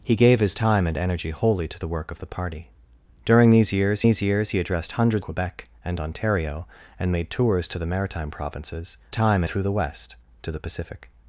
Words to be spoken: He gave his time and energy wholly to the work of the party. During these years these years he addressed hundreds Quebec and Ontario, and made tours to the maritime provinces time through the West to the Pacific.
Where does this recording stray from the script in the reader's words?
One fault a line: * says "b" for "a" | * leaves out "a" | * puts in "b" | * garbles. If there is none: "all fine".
all fine